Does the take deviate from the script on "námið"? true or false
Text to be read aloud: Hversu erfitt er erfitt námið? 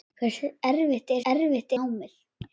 false